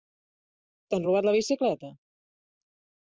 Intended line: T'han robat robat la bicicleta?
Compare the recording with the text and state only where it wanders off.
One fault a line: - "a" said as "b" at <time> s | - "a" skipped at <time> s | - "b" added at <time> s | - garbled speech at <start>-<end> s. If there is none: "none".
- "robat" skipped at 1.3 s